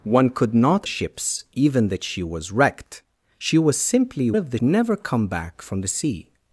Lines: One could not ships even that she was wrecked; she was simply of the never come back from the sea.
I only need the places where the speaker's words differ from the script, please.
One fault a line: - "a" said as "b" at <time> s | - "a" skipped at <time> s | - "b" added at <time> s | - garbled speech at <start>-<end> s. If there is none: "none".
none